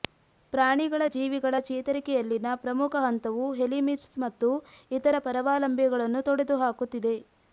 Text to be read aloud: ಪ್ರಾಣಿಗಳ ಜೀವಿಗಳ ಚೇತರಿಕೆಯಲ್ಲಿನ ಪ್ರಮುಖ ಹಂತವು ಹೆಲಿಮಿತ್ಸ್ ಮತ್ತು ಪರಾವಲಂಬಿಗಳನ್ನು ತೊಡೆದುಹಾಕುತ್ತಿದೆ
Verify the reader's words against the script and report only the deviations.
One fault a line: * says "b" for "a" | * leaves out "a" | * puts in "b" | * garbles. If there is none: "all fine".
* puts in "ಇತರ"